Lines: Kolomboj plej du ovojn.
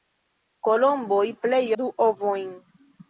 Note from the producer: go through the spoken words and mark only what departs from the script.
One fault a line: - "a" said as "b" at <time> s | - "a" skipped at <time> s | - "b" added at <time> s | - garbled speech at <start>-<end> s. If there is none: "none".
none